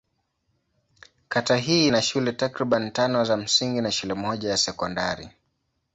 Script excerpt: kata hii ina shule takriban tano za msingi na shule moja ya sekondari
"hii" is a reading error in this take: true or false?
false